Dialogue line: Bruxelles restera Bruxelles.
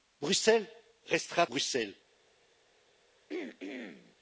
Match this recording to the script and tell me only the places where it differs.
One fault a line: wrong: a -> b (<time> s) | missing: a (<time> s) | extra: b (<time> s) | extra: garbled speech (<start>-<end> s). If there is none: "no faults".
no faults